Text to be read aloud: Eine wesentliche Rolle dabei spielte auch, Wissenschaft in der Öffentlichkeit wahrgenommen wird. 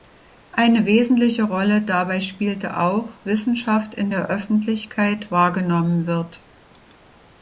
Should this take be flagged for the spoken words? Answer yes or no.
no